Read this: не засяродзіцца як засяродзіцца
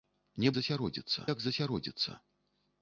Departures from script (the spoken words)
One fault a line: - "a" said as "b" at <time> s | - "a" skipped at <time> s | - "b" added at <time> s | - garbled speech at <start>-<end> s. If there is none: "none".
none